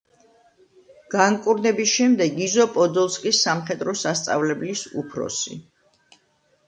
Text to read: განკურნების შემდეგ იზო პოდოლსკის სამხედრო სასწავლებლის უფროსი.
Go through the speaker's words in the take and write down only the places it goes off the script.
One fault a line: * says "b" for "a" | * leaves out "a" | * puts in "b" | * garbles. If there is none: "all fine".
all fine